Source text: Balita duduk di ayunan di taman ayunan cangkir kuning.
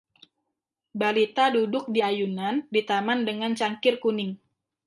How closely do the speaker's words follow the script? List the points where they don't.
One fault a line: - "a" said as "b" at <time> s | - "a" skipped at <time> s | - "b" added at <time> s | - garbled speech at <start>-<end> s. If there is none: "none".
- "ayunan" said as "dengan" at 3.3 s